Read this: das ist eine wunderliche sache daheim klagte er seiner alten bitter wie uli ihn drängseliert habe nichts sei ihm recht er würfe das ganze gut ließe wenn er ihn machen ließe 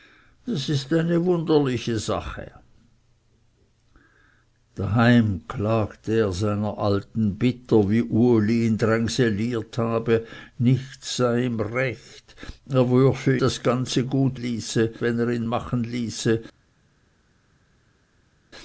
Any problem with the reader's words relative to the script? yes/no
no